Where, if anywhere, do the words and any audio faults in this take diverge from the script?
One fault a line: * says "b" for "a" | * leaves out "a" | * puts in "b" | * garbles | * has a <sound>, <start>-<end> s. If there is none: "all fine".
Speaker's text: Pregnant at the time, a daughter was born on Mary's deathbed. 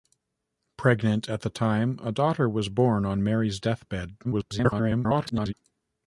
* garbles